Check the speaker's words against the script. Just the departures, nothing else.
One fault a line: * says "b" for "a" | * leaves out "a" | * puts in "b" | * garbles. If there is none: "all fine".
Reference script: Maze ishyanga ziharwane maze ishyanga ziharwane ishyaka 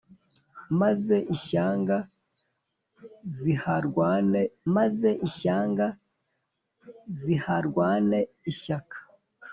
all fine